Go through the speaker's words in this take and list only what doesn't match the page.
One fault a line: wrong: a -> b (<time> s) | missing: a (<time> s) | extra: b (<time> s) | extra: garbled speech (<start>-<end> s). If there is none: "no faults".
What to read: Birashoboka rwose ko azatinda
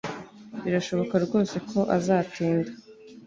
no faults